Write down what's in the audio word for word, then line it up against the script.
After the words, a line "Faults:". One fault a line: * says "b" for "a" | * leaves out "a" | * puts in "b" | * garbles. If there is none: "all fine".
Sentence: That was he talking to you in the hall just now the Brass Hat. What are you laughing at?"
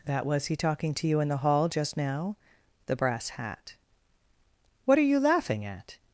That was he talking to you in the hall just now the Brass Hat. What are you laughing at?"
Faults:
all fine